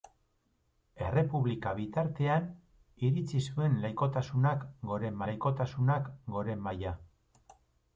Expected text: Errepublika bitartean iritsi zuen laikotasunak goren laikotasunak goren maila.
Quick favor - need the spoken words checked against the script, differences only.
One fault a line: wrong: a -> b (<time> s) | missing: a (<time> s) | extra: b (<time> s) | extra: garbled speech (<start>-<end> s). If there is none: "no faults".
no faults